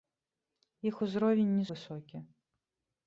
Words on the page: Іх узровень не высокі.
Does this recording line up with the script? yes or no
yes